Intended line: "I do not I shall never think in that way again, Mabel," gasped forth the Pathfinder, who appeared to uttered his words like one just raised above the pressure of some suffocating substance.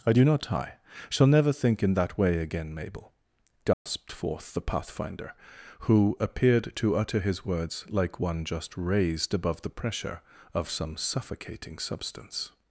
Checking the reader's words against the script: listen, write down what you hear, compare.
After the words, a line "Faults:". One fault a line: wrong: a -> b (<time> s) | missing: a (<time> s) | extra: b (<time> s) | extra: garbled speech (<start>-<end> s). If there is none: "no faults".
"I do not I shall never think in that way again, Mabel," gasped forth the Pathfinder, who appeared to utter his words like one just raised above the pressure of some suffocating substance.
Faults:
wrong: uttered -> utter (7.0 s)